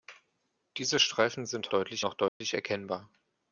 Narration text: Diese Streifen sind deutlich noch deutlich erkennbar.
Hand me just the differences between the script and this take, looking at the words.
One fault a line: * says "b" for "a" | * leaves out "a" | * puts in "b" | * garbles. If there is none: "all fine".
all fine